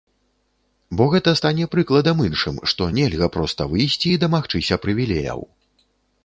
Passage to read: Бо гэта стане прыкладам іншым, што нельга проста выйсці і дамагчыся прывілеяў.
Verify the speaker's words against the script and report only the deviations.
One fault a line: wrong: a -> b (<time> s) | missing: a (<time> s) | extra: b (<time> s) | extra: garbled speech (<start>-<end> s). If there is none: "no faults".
no faults